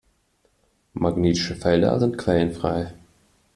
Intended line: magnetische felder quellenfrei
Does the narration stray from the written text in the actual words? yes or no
yes